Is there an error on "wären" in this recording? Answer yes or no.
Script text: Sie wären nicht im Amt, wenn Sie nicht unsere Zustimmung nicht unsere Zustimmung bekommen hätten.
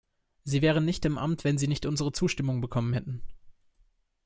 no